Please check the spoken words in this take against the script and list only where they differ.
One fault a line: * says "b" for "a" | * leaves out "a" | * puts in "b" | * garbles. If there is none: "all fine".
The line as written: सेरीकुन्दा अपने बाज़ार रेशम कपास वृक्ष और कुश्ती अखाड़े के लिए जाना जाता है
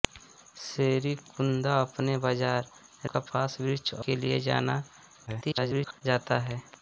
* leaves out "रेशम"
* leaves out "और कुश्ती अखाड़े"
* garbles